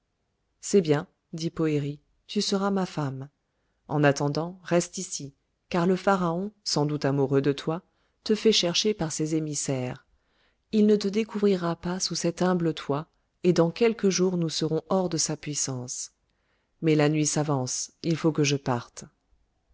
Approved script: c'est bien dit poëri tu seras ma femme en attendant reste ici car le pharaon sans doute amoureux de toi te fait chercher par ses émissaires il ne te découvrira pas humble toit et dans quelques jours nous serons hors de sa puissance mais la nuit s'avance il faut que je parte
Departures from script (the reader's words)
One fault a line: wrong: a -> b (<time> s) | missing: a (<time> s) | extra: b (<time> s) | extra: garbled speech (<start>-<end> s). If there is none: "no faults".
extra: sous cet (12.0 s)